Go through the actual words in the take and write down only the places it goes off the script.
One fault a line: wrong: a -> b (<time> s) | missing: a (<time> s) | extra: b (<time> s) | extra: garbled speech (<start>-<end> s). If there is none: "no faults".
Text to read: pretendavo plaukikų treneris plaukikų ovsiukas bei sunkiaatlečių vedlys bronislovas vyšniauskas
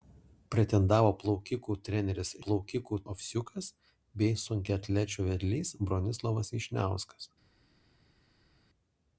no faults